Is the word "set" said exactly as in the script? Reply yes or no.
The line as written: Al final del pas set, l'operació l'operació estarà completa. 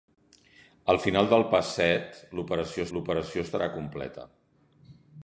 yes